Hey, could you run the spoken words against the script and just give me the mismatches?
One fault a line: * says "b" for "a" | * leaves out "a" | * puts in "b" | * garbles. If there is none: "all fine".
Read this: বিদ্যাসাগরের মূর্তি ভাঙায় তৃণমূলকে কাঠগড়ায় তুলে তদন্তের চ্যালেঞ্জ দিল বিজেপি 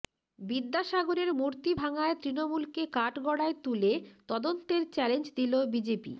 all fine